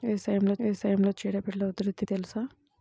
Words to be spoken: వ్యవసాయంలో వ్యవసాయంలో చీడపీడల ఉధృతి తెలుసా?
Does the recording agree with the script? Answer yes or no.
yes